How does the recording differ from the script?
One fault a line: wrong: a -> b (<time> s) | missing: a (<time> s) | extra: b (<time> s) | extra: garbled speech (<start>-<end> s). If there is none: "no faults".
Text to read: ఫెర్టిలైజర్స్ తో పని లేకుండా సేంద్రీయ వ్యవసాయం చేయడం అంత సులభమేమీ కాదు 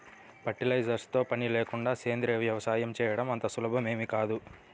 no faults